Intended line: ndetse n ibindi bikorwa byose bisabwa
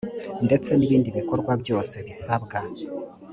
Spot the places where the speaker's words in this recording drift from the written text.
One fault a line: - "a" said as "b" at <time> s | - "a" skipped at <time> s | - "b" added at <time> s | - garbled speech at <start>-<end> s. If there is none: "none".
none